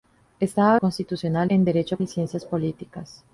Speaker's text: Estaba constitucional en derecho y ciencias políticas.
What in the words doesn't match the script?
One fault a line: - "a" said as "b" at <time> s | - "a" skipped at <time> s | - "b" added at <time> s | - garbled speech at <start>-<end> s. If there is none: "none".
none